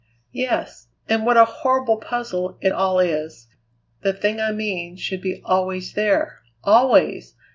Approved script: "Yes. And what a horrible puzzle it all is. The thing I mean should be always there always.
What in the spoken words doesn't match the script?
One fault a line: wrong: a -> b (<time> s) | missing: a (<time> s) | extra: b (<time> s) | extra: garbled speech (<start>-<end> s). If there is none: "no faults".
no faults